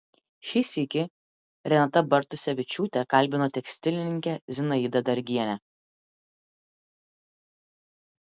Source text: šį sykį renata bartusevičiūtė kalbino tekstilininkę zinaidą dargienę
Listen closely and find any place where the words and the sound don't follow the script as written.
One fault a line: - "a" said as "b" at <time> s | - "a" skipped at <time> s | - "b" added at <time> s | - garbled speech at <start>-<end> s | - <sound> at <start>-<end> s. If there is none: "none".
none